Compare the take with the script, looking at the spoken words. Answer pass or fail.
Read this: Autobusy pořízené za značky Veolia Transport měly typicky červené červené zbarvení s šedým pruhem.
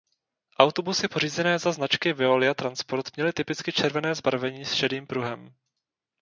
fail